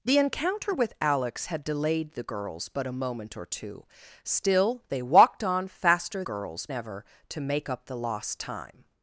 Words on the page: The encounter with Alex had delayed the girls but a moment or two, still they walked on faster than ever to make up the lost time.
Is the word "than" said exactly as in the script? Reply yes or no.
no